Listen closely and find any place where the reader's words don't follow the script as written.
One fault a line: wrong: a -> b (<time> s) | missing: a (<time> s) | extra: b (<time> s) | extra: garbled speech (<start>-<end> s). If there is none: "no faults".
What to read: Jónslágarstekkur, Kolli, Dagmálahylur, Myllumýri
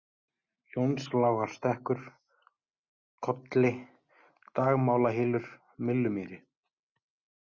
no faults